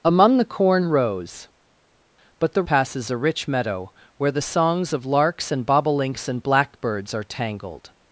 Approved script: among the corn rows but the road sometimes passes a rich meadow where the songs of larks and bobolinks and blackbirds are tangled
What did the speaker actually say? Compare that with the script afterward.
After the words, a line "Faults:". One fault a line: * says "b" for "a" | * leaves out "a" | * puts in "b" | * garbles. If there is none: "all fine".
among the corn rows but the passes a rich meadow where the songs of larks and bobolinks and blackbirds are tangled
Faults:
* leaves out "road sometimes"